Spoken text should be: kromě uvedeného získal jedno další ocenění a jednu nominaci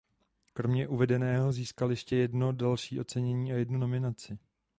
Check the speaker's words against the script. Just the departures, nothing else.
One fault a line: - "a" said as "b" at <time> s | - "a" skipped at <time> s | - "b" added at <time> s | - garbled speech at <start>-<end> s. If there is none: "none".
- "ještě" added at 1.9 s